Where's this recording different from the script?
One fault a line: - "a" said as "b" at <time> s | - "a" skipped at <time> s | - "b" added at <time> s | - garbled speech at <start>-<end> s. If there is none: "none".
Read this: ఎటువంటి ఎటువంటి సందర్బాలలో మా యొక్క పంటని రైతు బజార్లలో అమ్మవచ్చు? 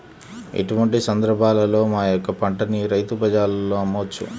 - "ఎటువంటి" skipped at 1.0 s